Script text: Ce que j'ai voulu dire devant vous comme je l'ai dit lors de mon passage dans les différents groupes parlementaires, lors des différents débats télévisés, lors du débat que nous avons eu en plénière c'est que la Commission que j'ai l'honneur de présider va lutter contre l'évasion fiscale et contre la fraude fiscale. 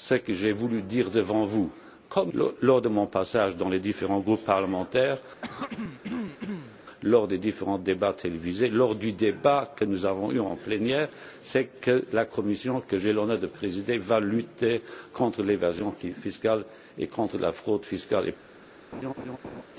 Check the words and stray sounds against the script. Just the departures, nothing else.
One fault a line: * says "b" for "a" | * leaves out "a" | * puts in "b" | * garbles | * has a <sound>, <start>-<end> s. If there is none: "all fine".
* leaves out "je l'ai dit"
* has a throat clearing, 5.4-6.8 s
* has a laugh, 18.9-19.6 s